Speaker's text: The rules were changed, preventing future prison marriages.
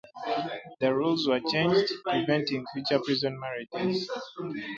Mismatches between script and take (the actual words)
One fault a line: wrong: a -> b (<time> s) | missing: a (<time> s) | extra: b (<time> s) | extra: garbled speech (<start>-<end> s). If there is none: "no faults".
no faults